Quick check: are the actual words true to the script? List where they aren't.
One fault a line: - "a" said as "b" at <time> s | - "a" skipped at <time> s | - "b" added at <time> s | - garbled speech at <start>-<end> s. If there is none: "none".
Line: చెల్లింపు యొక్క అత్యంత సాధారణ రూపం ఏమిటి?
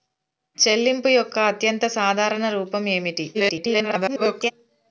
- garbled speech at 3.3-4.5 s